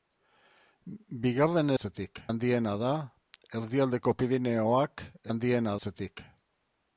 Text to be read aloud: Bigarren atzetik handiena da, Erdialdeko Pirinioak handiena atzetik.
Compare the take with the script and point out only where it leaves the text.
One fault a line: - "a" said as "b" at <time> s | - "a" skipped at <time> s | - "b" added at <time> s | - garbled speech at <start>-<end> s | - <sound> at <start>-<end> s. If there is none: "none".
none